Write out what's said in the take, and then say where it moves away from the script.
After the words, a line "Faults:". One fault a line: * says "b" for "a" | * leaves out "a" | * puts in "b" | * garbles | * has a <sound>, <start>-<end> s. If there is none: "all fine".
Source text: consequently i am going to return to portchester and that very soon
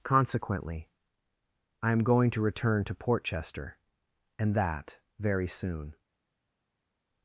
consequently i am going to return to portchester and that very soon
Faults:
all fine